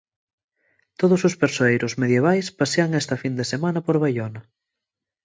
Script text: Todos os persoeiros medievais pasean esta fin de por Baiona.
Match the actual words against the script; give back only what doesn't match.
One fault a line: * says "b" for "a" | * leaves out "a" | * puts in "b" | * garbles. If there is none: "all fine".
* puts in "semana"